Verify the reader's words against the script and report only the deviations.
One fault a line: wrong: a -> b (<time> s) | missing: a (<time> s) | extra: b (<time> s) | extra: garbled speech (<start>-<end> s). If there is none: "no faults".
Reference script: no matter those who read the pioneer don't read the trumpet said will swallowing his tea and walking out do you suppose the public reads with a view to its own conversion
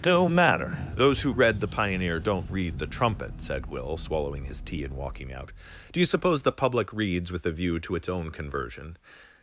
no faults